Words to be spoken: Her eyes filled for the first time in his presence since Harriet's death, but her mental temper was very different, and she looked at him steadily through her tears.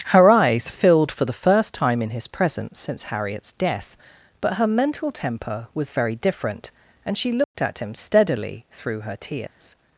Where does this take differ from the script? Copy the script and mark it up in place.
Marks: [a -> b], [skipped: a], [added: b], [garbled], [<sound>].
Her eyes filled for the first time in his presence since Harriet's death, but her mental temper was very different, and she looked [dropout] at him steadily through her tears. [dropout]